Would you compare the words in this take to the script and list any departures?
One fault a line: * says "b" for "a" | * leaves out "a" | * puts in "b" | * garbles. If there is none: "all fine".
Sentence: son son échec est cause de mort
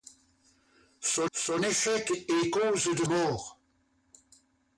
all fine